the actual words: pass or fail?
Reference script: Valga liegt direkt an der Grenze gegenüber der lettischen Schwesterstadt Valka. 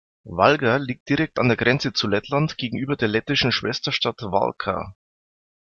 fail